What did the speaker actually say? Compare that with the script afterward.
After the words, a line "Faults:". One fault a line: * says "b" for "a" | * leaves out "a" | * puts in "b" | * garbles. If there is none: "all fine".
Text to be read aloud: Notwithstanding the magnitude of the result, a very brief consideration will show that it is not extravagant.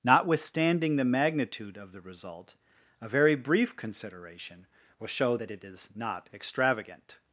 Notwithstanding the magnitude of the result, a very brief consideration will show that it is not extravagant.
Faults:
all fine